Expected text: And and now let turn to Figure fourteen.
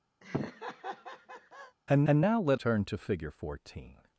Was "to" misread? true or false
false